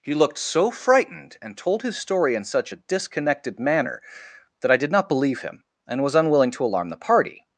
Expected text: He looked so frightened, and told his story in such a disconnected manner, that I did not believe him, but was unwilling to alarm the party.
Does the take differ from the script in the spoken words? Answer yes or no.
yes